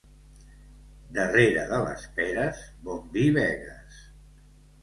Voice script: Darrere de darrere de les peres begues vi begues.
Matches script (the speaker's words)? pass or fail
fail